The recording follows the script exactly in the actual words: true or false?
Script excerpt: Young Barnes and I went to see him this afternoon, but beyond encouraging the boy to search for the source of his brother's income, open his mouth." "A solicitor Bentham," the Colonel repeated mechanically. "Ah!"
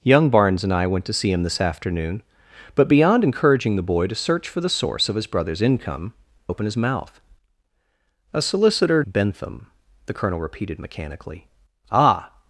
true